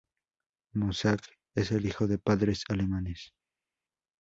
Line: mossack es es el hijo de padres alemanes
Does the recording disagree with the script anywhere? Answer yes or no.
yes